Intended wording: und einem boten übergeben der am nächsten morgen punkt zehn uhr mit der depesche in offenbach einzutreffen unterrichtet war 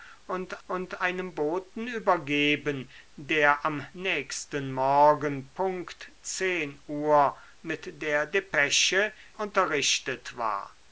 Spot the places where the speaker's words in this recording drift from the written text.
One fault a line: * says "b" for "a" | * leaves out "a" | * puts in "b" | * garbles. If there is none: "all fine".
* puts in "und"
* leaves out "in offenbach einzutreffen"